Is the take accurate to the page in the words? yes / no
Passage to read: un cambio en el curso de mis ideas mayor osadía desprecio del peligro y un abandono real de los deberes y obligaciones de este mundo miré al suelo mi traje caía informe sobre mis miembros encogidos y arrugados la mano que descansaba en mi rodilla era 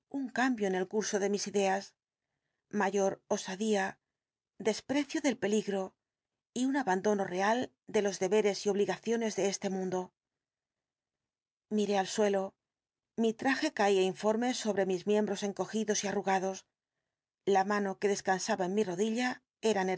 yes